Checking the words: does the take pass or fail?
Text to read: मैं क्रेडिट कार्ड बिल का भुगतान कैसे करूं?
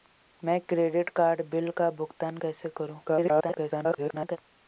fail